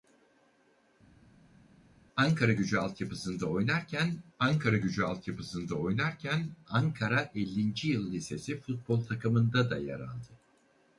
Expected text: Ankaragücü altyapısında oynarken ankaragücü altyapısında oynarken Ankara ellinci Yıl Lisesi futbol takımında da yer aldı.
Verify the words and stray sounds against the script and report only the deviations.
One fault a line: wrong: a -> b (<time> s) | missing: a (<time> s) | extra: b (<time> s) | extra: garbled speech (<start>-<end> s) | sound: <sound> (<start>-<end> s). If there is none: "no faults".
no faults